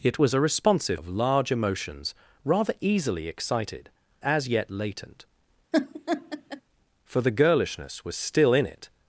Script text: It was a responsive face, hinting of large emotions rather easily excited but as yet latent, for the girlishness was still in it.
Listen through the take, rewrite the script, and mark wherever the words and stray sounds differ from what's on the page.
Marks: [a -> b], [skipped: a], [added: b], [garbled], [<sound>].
It was a responsive [skipped: face, hinting] of large emotions rather easily excited [skipped: but] as yet latent, [laugh] for the girlishness was still in it.